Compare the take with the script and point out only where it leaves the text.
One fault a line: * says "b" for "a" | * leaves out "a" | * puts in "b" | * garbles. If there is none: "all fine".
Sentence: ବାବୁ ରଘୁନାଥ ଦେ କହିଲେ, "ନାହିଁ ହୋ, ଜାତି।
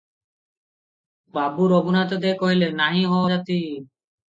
all fine